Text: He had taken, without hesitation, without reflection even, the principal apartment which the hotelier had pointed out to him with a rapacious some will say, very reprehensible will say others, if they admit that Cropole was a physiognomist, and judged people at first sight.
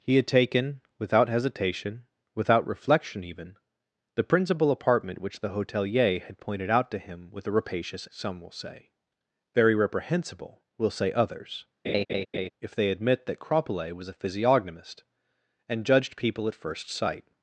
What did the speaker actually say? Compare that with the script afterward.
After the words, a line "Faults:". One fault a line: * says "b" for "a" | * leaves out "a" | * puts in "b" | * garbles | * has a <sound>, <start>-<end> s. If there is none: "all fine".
He had taken, without hesitation, without reflection even, the principal apartment which the hotelier had pointed out to him with a rapacious some will say, very reprehensible will say others, if they admit that Cropole was a physiognomist, and judged people at first sight.
Faults:
* has a laugh, 11.8-12.5 s